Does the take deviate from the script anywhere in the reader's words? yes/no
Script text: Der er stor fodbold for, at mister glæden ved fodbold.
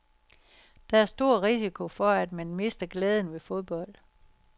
yes